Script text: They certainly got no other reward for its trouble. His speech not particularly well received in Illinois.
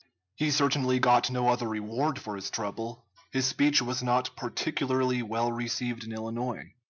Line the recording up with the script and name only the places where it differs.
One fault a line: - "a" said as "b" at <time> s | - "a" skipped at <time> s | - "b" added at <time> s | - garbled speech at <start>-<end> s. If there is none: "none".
- "They" said as "He" at 0.3 s
- "its" said as "his" at 2.4 s
- "was" added at 3.8 s